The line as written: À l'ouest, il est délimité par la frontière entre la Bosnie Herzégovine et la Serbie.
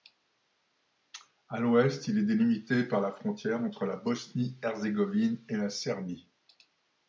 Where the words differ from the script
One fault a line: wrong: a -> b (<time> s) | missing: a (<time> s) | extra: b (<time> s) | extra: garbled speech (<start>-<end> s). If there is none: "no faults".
no faults